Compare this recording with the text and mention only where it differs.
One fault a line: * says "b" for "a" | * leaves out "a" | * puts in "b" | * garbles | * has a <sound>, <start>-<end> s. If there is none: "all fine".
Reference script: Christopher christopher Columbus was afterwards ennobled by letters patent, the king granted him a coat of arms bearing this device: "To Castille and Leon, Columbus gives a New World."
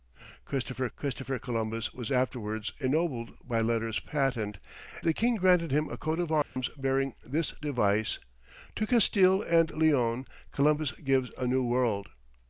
* has a dropout, 6.4-6.6 s